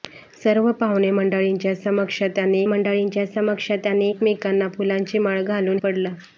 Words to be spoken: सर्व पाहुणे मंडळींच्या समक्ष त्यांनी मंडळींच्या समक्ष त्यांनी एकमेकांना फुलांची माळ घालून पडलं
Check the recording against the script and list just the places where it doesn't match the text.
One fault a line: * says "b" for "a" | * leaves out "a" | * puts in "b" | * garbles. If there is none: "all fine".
all fine